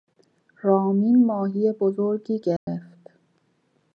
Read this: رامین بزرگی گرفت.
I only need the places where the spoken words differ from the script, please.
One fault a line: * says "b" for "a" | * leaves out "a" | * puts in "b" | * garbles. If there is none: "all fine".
* puts in "ماهی"